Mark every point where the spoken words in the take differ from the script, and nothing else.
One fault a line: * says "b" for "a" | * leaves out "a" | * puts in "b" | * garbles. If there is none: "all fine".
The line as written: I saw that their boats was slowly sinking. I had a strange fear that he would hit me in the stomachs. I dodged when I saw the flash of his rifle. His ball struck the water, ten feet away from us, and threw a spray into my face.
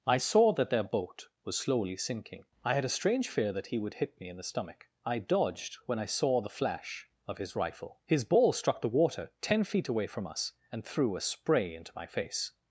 * says "boat" for "boats"
* says "stomach" for "stomachs"